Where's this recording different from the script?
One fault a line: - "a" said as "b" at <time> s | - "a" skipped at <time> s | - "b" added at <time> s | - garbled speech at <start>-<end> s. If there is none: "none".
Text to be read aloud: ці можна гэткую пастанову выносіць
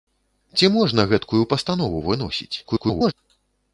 - garbled speech at 2.6-3.1 s